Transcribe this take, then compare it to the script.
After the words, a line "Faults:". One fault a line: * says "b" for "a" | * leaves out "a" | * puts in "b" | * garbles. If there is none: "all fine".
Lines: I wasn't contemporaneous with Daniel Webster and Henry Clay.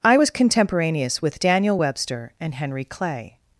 I was contemporaneous with Daniel Webster and Henry Clay.
Faults:
* says "was" for "wasn't"